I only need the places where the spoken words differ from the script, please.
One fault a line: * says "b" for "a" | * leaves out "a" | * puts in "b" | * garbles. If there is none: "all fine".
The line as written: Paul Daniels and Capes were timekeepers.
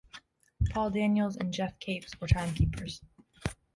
* puts in "Geoff"